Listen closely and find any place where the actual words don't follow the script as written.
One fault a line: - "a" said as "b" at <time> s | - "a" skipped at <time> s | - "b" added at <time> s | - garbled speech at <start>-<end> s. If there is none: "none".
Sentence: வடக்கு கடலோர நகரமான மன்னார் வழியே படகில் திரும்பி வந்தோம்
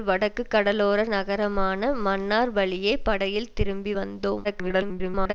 - garbled speech at 4.4-5.3 s